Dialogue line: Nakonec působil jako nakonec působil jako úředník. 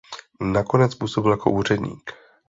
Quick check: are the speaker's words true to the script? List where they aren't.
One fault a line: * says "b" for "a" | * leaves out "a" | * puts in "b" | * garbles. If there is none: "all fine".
* leaves out "nakonec působil jako"